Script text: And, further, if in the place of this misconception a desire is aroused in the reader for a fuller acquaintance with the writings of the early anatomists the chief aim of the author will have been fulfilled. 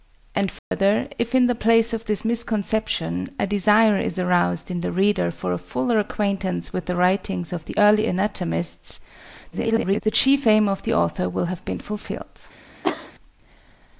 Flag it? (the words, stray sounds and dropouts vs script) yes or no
yes